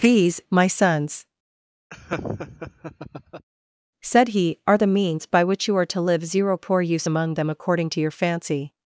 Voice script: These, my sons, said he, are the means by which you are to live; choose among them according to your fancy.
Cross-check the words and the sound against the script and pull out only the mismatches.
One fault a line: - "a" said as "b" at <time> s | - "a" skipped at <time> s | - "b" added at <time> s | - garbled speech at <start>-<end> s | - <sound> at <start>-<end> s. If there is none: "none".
- laugh at 1.9-3.5 s
- "choose" said as "zero poor use" at 6.3 s